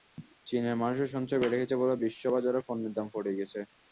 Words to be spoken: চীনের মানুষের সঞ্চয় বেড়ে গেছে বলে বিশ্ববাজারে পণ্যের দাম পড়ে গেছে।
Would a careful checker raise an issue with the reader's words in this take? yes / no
no